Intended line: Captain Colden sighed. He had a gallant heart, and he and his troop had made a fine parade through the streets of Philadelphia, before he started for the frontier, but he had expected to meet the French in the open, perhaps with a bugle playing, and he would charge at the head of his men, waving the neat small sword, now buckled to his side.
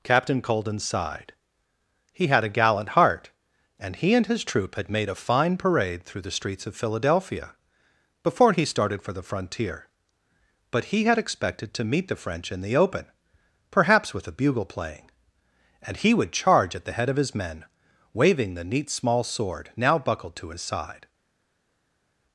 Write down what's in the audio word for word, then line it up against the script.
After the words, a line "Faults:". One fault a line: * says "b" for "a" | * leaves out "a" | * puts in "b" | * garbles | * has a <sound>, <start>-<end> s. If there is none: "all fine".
Captain Colden sighed. He had a gallant heart, and he and his troop had made a fine parade through the streets of Philadelphia, before he started for the frontier, but he had expected to meet the French in the open, perhaps with a bugle playing, and he would charge at the head of his men, waving the neat small sword, now buckled to his side.
Faults:
all fine